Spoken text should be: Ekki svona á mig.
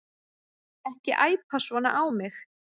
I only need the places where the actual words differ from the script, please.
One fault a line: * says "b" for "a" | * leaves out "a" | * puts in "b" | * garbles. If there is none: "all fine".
* puts in "æpa"